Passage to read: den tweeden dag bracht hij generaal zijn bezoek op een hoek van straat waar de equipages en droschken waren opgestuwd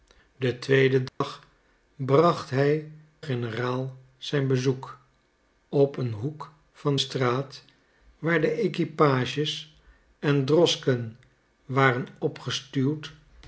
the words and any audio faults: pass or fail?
fail